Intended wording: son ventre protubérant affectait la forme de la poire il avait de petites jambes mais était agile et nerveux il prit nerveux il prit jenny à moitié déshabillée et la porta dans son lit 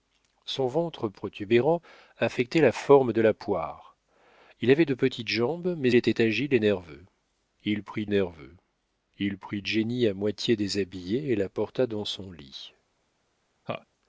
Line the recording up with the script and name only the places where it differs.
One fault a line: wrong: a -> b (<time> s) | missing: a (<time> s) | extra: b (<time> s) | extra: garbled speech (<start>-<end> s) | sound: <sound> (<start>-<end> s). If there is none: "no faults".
sound: laugh (13.7-13.9 s)